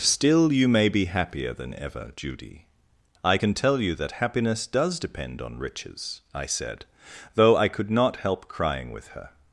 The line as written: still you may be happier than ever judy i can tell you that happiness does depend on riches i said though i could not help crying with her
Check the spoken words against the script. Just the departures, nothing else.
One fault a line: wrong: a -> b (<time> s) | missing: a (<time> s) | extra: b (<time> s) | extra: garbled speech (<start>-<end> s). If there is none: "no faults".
no faults